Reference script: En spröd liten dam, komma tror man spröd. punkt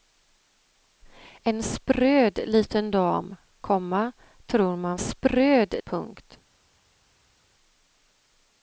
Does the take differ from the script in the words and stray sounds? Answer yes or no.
no